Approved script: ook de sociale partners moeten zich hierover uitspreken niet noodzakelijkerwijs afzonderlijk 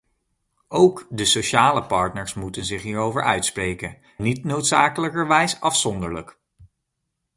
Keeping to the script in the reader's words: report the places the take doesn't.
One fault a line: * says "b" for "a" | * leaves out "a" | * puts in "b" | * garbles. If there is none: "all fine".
all fine